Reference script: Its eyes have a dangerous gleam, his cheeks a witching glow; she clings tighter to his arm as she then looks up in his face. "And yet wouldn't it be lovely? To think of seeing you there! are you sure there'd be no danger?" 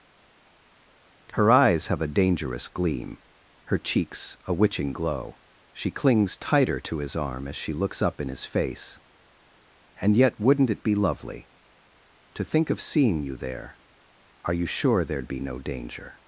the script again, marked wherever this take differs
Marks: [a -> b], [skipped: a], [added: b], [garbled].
[Its -> Her] eyes have a dangerous gleam, [his -> her] cheeks a witching glow; she clings tighter to his arm as she [skipped: then] looks up in his face. "And yet wouldn't it be lovely? To think of seeing you there! are you sure there'd be no danger?"